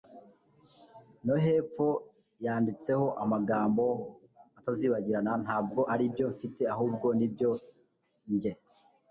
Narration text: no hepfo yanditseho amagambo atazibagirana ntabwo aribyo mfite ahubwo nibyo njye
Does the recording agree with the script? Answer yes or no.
yes